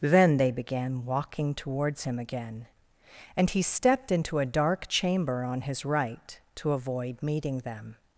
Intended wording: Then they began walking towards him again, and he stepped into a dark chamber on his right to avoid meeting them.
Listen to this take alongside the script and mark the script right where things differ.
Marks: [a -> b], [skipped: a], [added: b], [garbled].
Then they began walking towards him again, and he stepped into a dark chamber on his right to avoid meeting them.